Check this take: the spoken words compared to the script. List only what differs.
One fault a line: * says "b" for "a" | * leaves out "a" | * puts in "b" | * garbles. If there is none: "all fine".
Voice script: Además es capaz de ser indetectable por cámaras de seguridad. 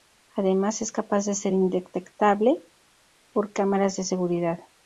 all fine